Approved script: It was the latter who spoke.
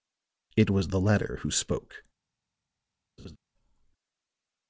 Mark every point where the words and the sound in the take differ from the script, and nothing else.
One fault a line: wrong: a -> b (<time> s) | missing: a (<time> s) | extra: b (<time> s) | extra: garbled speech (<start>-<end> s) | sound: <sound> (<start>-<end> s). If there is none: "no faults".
sound: laugh (3.2-3.4 s)